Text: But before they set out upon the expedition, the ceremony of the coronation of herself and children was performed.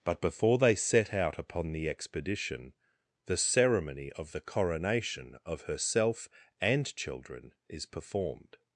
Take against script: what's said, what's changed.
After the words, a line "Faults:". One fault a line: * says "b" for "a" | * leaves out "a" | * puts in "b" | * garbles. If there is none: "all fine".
But before they set out upon the expedition, the ceremony of the coronation of herself and children is performed.
Faults:
* says "is" for "was"